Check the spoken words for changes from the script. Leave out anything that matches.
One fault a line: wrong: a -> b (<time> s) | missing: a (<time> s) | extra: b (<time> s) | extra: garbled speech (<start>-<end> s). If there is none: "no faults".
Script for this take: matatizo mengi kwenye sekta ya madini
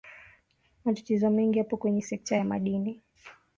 extra: yapo (1.6 s)